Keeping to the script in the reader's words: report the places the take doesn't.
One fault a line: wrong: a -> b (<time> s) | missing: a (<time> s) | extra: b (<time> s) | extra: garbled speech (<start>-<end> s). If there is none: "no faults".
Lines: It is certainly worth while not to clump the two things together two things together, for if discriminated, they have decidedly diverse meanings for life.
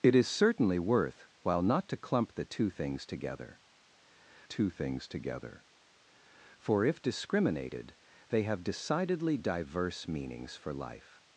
no faults